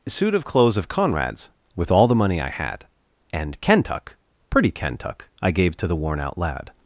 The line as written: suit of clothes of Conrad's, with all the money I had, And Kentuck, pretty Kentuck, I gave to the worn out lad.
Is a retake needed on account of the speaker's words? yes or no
no